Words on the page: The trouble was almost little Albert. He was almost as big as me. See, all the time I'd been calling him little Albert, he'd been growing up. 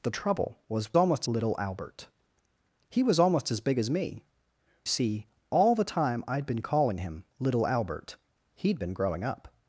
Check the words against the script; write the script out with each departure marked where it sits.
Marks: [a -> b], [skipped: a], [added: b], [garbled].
The trouble was almost little Albert. He was almost as big as me. See, all the time I'd been calling him little Albert, he'd been growing up.